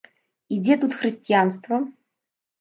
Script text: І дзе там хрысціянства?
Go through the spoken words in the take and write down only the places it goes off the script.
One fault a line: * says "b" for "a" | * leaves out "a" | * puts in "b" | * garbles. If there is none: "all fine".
* says "тут" for "там"